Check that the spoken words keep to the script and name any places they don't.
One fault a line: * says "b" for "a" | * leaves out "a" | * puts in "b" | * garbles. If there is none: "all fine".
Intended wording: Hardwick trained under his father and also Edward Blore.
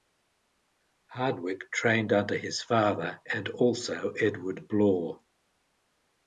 all fine